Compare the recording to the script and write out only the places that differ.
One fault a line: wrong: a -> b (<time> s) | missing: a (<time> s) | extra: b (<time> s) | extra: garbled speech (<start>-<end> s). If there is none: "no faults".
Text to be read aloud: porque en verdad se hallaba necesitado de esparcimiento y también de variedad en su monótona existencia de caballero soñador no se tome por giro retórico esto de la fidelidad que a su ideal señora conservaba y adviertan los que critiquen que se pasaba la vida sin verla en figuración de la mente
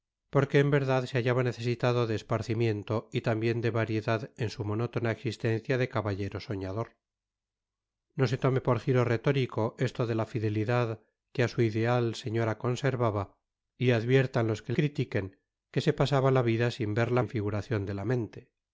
no faults